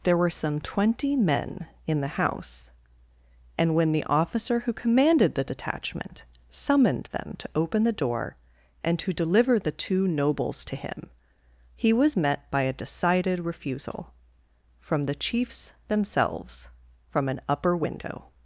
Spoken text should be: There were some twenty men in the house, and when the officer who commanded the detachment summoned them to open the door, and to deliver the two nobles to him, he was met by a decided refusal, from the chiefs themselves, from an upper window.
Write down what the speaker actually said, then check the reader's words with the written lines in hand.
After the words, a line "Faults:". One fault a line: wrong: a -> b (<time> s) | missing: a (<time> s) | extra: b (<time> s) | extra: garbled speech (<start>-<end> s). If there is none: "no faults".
There were some twenty men in the house, and when the officer who commanded the detachment summoned them to open the door, and to deliver the two nobles to him, he was met by a decided refusal, from the chiefs themselves, from an upper window.
Faults:
no faults